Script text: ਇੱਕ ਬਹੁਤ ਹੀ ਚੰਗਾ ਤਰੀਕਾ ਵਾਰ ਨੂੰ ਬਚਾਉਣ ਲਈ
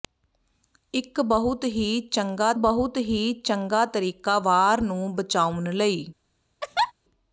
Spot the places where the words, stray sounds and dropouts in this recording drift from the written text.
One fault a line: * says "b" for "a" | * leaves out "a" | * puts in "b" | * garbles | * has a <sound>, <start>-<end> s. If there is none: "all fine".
* puts in "ਬਹੁਤ ਹੀ ਚੰਗਾ"
* has a laugh, 6.6-6.9 s